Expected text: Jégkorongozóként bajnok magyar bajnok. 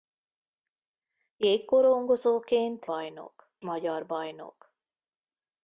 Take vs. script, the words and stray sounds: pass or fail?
pass